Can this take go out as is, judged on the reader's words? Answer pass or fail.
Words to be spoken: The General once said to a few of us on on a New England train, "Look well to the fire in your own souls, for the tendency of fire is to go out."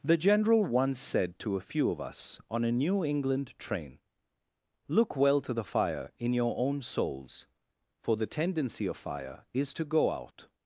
fail